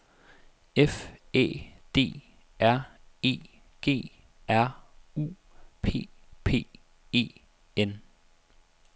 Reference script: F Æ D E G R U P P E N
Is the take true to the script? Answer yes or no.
no